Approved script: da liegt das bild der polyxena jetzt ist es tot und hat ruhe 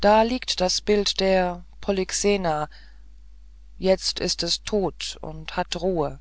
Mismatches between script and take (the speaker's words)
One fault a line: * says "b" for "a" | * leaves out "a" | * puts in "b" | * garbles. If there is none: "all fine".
all fine